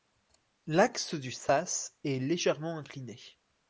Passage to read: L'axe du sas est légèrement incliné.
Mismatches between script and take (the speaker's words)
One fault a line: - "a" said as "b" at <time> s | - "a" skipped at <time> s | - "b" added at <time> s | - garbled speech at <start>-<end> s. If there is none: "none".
none